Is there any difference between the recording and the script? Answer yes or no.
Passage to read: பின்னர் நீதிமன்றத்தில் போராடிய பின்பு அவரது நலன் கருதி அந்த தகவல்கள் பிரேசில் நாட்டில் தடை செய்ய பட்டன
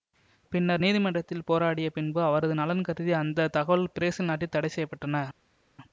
no